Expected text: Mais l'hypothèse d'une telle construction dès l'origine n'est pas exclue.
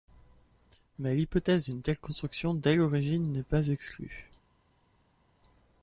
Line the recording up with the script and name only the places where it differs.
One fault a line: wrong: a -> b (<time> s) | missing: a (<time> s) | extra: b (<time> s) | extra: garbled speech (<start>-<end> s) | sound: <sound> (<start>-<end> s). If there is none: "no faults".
no faults